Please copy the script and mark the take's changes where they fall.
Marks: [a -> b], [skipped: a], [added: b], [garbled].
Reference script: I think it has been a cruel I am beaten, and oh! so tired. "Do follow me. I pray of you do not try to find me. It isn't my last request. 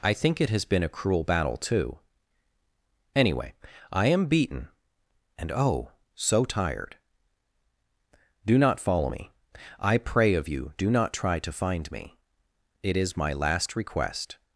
I think it has been a cruel [added: battle too Anyway] I am beaten, and oh! so tired. "Do [added: not] follow me. I pray of you do not try to find me. It [isn't -> is] my last request.